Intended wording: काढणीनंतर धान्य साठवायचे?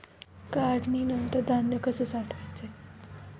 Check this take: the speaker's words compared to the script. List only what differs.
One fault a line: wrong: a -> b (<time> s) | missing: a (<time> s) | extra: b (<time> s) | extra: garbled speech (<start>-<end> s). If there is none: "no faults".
extra: कसे (1.8 s)